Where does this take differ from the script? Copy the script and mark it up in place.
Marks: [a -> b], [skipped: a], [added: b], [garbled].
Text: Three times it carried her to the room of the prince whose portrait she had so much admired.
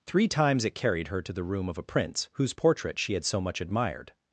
Three times it carried her to the room of [the -> a] prince whose portrait she had so much admired.